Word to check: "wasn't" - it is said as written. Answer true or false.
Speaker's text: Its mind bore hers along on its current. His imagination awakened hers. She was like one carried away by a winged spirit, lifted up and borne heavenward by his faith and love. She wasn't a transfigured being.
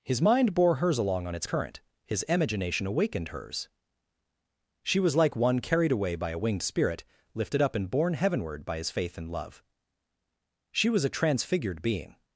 false